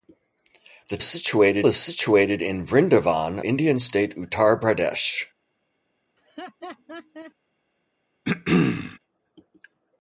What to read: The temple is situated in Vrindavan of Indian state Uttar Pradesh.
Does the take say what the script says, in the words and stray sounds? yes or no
no